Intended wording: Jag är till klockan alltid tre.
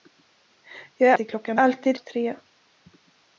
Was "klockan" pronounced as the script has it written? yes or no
yes